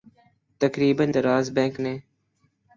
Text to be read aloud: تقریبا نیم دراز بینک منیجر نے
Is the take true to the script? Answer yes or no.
no